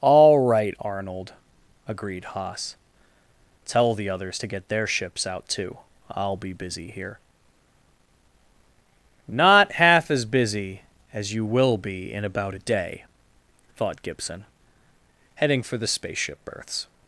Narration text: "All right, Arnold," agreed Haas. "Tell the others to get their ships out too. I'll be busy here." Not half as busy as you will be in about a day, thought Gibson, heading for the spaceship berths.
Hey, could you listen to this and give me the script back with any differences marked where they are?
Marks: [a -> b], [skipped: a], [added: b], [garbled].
"All right, Arnold," agreed Haas. "Tell the others to get their ships out too. I'll be busy here." Not half as busy as you will be in about a day, thought Gibson, heading for the spaceship berths.